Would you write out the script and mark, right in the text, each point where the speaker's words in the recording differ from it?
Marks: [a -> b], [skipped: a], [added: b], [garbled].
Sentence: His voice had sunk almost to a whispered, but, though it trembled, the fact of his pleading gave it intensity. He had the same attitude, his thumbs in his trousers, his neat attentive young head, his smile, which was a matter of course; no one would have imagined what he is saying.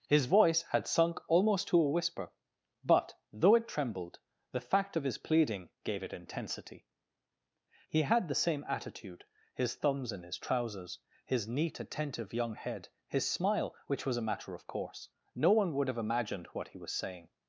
His voice had sunk almost to a [whispered, -> whisper] but, though it trembled, the fact of his pleading gave it intensity. He had the same attitude, his thumbs in his trousers, his neat attentive young head, his smile, which was a matter of course; no one would have imagined what he [is -> was] saying.